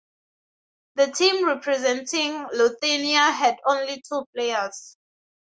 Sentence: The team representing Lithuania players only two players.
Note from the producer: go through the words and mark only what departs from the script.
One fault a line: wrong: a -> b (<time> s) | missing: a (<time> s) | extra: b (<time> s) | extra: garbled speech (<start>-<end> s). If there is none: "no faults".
wrong: players -> had (3.3 s)